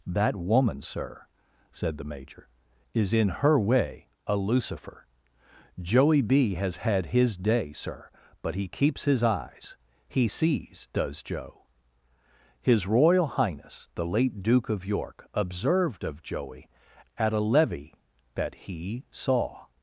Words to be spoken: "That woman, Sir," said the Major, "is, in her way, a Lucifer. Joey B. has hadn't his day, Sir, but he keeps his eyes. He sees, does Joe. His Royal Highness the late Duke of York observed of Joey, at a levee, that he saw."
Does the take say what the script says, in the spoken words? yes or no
no